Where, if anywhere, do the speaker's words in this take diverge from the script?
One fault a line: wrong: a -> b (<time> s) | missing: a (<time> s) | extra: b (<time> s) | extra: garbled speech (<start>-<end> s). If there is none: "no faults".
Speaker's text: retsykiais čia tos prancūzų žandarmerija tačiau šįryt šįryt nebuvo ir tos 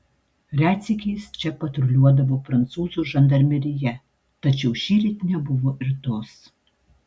wrong: tos -> patruliuodavo (1.6 s)
missing: šįryt (5.2 s)